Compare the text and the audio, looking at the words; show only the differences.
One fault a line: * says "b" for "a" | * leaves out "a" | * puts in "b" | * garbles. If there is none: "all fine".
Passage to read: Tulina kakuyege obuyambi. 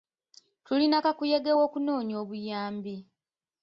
* puts in "w'okunoonya"